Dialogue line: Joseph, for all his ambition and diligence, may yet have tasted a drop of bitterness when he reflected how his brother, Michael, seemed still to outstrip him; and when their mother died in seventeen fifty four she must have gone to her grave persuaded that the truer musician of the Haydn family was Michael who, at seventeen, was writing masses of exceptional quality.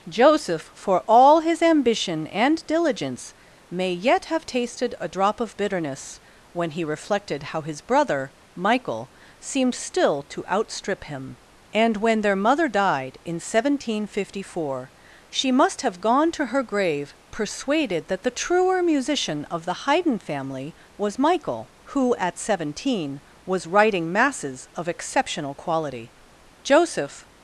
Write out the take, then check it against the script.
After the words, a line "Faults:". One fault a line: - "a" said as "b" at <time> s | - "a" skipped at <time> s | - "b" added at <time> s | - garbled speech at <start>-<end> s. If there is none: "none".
Joseph, for all his ambition and diligence, may yet have tasted a drop of bitterness when he reflected how his brother, Michael, seemed still to outstrip him; and when their mother died in seventeen fifty four she must have gone to her grave persuaded that the truer musician of the Haydn family was Michael who, at seventeen, was writing masses of exceptional quality. Joseph
Faults:
- "Joseph" added at 26.6 s